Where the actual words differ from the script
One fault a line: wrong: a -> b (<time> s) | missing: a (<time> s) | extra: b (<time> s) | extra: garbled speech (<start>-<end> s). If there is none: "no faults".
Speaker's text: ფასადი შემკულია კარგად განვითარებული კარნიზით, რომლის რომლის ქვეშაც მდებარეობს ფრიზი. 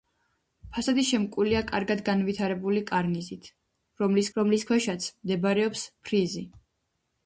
no faults